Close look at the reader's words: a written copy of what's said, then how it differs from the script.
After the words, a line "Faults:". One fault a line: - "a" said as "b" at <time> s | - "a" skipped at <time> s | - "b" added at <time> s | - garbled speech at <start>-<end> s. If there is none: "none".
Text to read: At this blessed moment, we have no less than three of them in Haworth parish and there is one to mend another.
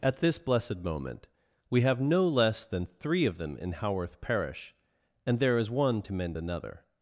At this blessed moment, we have no less than three of them in Haworth parish and there is one to mend another.
Faults:
none